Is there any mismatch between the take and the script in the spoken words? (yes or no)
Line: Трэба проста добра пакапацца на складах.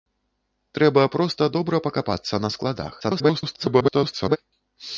yes